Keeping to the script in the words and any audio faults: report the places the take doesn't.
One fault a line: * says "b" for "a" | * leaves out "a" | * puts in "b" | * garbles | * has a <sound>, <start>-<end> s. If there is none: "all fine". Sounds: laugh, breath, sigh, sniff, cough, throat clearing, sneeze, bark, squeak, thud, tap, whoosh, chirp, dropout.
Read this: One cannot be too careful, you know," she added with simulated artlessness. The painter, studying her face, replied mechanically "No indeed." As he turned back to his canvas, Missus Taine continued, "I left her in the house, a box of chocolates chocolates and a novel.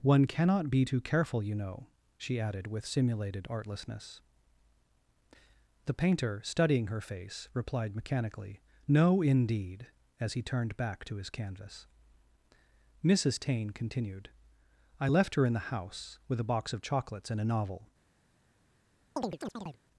* puts in "with"
* leaves out "chocolates"
* has a chirp, 19.2-19.8 s